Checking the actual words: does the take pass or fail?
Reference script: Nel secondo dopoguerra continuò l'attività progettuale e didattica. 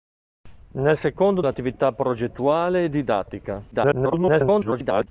fail